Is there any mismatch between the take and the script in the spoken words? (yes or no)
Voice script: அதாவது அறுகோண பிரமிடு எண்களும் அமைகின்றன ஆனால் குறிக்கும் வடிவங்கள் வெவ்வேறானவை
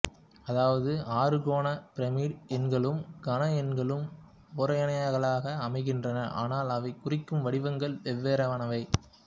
yes